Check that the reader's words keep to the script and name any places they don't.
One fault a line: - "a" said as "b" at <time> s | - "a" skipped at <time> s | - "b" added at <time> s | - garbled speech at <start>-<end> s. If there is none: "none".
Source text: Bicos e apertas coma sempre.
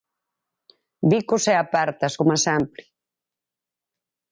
none